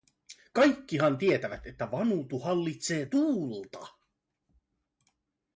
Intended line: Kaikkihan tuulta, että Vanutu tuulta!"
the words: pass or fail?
fail